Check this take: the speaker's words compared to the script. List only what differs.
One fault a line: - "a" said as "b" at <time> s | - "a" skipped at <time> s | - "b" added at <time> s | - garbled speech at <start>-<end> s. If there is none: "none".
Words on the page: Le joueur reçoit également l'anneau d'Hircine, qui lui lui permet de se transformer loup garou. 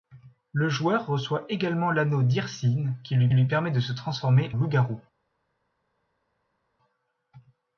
none